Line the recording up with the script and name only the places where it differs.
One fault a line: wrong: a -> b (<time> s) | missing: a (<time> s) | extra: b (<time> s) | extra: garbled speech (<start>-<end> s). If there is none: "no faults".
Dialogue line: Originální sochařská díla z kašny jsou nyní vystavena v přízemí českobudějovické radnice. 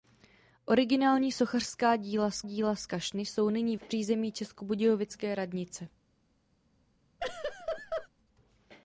extra: díla z (2.4 s)
missing: vystavena (3.8 s)